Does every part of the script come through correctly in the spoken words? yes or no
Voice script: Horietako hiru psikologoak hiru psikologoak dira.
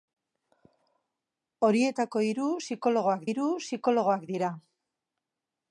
yes